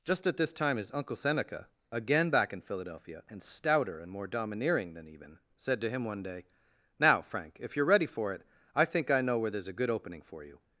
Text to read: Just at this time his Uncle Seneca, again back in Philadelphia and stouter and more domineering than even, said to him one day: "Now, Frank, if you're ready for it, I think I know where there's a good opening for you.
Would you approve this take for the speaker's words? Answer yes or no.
yes